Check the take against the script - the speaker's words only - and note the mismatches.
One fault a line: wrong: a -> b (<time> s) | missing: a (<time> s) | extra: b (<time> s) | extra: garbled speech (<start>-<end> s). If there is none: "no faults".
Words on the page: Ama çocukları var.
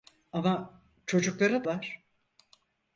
no faults